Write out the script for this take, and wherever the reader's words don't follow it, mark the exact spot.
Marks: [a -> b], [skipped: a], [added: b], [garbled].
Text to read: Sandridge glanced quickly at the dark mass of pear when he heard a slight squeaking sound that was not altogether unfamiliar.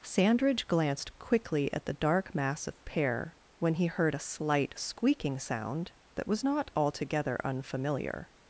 Sandridge glanced quickly at the dark mass of pear when he heard a slight squeaking sound that was not altogether unfamiliar.